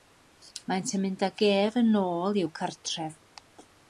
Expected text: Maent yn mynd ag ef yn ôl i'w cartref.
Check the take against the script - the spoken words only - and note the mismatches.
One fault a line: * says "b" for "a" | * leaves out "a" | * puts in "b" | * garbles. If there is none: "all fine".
all fine